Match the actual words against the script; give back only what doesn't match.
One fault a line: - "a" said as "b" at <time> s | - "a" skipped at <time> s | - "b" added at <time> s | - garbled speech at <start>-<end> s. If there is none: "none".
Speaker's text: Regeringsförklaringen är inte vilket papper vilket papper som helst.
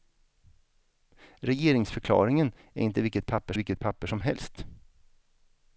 none